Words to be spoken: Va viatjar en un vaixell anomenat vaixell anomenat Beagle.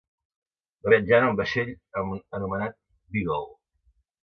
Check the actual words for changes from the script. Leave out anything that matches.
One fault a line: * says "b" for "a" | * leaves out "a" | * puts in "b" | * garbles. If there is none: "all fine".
* leaves out "vaixell anomenat"